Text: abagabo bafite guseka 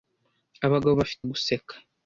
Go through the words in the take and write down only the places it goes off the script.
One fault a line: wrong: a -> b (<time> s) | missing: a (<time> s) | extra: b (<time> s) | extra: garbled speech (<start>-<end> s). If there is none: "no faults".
no faults